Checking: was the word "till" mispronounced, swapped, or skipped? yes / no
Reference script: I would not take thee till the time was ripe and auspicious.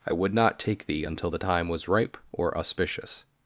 yes